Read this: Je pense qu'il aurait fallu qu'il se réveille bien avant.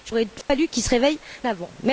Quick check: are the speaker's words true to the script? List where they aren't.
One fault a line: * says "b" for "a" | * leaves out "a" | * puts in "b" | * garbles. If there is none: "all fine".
* leaves out "pense qu'il"
* leaves out "bien"